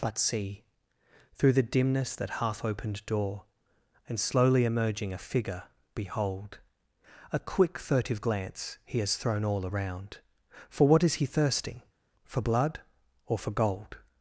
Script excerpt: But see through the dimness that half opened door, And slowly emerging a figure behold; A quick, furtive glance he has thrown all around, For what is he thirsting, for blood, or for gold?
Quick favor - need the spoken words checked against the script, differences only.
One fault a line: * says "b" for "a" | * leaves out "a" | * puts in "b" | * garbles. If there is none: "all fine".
all fine